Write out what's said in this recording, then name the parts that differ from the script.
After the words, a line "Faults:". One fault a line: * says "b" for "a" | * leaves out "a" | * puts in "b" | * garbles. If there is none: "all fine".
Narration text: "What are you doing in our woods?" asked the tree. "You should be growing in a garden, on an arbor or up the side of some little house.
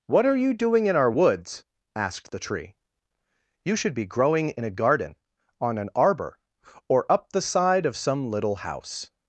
"What are you doing in our woods?" asked the tree. "You should be growing in a garden, on an arbor or up the side of some little house.
Faults:
all fine